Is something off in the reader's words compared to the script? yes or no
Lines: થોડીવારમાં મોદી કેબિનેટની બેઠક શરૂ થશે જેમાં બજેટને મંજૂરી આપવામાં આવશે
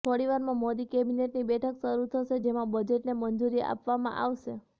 no